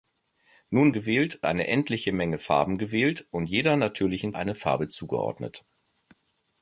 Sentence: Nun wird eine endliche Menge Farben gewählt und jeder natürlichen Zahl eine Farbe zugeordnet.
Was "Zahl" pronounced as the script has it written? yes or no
no